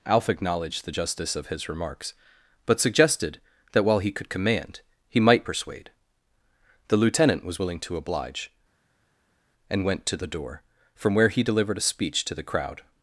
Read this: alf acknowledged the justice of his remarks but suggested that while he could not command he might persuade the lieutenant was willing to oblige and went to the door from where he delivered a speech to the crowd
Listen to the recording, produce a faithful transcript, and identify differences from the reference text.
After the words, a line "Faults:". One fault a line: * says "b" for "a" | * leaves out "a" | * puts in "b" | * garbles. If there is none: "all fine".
alf acknowledged the justice of his remarks but suggested that while he could command he might persuade the lieutenant was willing to oblige and went to the door from where he delivered a speech to the crowd
Faults:
* leaves out "not"